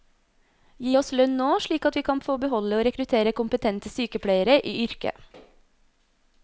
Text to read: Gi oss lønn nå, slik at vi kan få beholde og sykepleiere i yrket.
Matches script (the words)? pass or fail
fail